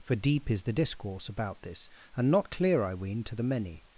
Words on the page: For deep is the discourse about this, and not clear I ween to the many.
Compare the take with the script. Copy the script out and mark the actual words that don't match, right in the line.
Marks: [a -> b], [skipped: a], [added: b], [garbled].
For deep is the discourse about this, and not clear I ween to the many.